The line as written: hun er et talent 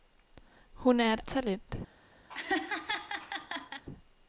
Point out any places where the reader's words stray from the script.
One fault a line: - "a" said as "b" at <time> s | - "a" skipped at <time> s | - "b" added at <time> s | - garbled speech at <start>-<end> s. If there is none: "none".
none